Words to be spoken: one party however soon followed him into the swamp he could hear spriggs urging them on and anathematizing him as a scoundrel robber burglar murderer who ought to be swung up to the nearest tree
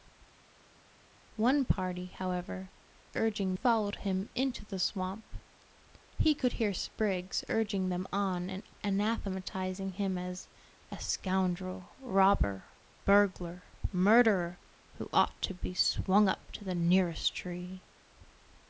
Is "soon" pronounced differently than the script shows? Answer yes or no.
yes